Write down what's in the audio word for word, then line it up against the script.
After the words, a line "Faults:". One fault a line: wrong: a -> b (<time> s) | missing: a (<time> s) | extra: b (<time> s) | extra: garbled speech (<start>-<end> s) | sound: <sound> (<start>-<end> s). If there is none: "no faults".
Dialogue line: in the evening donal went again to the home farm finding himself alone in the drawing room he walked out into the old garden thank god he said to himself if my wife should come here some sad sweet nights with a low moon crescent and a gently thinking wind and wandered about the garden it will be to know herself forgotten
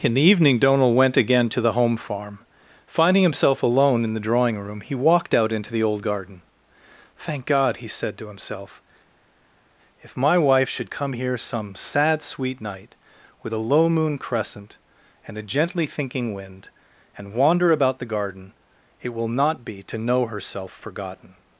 in the evening donal went again to the home farm finding himself alone in the drawing room he walked out into the old garden thank god he said to himself if my wife should come here some sad sweet night with a low moon crescent and a gently thinking wind and wander about the garden it will not be to know herself forgotten
Faults:
wrong: nights -> night (12.6 s)
wrong: wandered -> wander (17.4 s)
extra: not (19.3 s)